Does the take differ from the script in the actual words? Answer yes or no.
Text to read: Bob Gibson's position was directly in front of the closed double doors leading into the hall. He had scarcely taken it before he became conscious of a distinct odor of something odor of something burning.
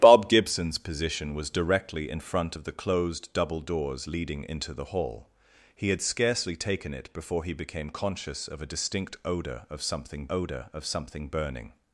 no